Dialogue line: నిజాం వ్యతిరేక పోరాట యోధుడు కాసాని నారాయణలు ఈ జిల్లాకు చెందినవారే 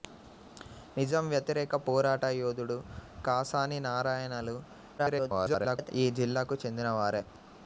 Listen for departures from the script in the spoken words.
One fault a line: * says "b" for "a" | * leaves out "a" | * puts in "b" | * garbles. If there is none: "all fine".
* garbles